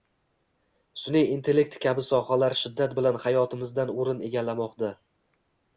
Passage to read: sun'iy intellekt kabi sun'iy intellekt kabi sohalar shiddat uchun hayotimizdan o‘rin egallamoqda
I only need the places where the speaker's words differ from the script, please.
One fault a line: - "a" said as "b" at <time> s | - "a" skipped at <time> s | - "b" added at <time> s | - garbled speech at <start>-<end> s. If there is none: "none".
- "sun'iy intellekt kabi" skipped at 2.1 s
- "uchun" said as "bilan" at 3.0 s